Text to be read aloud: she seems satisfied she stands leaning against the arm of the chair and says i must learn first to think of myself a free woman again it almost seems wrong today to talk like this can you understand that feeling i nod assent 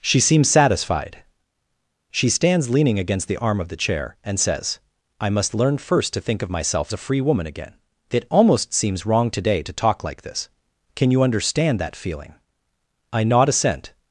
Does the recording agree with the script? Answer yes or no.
yes